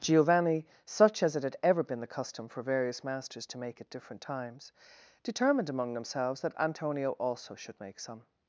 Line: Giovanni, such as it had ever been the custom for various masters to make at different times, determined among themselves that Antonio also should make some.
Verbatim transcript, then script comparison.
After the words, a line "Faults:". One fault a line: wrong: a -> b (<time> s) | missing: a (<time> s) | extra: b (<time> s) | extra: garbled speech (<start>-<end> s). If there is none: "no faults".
Giovanni, such as it had ever been the custom for various masters to make at different times, determined among themselves that Antonio also should make some.
Faults:
no faults